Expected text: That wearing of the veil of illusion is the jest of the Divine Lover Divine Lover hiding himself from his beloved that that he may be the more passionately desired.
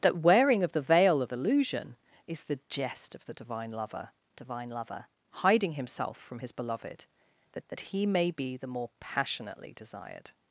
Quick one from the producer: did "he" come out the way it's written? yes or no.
yes